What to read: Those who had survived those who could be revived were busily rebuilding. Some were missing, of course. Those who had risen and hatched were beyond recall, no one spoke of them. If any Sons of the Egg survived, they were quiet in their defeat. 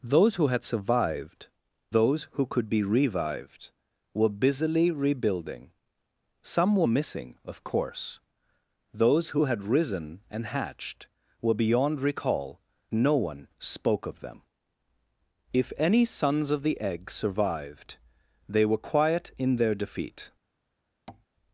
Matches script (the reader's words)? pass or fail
pass